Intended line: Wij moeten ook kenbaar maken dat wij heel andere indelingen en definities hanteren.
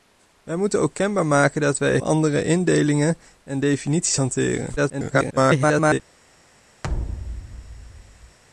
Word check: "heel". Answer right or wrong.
wrong